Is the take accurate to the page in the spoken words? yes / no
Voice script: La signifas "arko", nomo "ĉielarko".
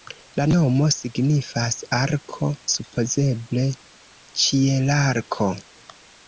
no